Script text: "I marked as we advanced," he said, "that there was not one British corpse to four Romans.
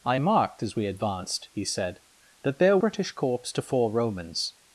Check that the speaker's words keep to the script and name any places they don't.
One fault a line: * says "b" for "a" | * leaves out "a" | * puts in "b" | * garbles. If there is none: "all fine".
* leaves out "was not one"